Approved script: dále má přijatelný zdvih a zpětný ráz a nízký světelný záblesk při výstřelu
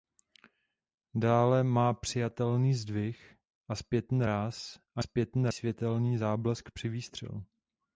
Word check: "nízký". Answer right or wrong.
wrong